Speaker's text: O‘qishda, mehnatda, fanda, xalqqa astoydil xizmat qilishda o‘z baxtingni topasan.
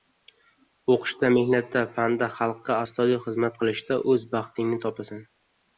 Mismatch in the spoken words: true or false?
false